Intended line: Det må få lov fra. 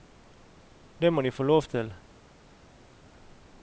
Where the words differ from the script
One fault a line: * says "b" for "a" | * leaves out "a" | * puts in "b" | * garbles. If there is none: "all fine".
* puts in "de"
* says "til" for "fra"